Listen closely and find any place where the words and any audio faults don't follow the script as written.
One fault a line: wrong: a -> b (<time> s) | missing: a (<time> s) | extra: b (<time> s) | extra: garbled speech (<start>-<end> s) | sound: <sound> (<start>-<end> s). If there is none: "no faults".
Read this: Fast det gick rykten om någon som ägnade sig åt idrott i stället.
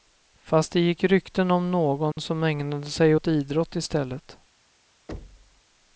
sound: dropout (2.1-2.2 s)
sound: thud (5.1-5.6 s)